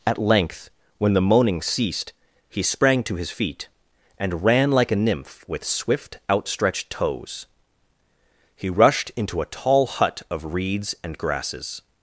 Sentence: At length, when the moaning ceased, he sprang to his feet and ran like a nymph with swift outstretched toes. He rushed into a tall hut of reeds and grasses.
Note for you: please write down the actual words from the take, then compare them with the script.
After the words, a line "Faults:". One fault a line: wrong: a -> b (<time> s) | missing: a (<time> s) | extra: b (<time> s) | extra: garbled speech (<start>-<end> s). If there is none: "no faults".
At length, when the moaning ceased, he sprang to his feet and ran like a nymph with swift outstretched toes. He rushed into a tall hut of reeds and grasses.
Faults:
no faults